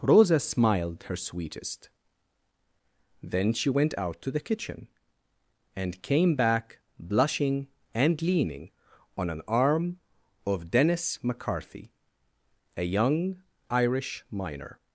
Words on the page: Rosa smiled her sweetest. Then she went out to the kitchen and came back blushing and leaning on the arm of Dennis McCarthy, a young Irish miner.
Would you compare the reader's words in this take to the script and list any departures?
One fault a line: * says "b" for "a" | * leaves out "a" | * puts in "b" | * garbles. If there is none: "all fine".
* says "an" for "the"